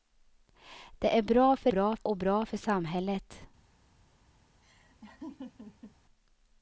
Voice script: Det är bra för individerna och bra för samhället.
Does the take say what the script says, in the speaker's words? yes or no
no